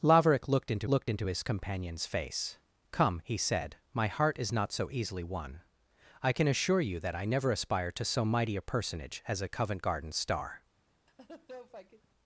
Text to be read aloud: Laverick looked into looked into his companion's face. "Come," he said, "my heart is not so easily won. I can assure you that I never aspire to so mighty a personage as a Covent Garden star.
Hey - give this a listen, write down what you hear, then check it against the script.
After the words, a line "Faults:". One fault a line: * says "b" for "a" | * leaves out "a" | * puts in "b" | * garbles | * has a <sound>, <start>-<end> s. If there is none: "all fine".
Laverick looked into looked into his companion's face. "Come," he said, "my heart is not so easily won. I can assure you that I never aspire to so mighty a personage as a Covent Garden star.
Faults:
* has a laugh, 11.1-12.1 s